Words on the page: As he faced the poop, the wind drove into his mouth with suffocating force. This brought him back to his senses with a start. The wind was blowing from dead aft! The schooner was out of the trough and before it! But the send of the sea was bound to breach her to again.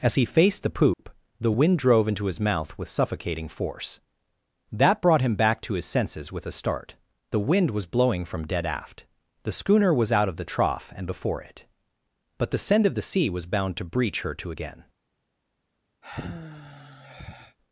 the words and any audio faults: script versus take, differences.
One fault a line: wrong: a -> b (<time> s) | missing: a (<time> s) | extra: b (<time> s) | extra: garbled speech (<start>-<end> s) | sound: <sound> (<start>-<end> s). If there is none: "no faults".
sound: dropout (0.9-1.0 s)
wrong: This -> That (4.7 s)
sound: sigh (16.0-17.6 s)